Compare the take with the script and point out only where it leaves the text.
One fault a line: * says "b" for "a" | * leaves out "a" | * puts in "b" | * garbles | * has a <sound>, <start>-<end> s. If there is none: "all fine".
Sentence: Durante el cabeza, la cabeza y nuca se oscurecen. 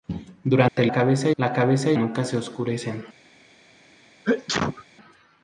* has a dropout, 0.7-0.8 s
* has a sneeze, 4.2-4.8 s